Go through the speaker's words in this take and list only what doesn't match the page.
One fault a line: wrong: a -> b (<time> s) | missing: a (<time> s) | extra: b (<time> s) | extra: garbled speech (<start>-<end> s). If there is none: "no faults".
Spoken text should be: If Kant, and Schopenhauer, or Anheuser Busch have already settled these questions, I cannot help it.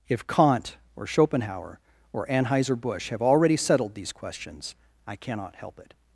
wrong: and -> or (0.9 s)